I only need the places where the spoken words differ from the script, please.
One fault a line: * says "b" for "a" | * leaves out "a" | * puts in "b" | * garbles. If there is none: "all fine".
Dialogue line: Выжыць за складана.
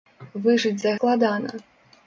all fine